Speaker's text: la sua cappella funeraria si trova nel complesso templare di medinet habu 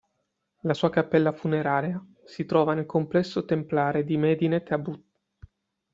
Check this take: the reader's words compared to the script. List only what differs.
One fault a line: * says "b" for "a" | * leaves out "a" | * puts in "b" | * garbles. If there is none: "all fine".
all fine